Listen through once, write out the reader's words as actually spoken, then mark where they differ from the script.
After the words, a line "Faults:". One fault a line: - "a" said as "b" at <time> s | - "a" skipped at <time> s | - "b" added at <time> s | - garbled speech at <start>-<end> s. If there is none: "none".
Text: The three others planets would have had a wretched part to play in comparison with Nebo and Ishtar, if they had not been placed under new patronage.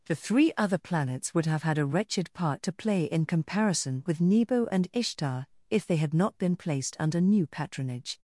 The three other planets would have had a wretched part to play in comparison with Nebo and Ishtar, if they had not been placed under new patronage.
Faults:
- "others" said as "other" at 0.6 s